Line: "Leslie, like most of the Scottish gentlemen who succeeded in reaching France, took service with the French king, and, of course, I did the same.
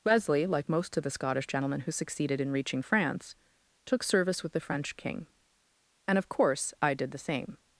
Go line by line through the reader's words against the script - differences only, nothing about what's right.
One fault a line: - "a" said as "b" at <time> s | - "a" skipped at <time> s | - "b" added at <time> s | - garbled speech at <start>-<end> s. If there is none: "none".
- "Leslie" said as "Wesley" at 0.0 s